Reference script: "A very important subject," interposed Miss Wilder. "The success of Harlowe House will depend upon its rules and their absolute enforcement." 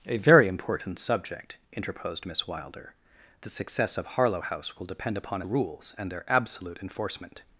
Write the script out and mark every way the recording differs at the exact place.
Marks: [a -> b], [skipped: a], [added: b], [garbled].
"A very important subject," interposed Miss Wilder. "The success of Harlowe House will depend upon [skipped: its] rules and their absolute enforcement."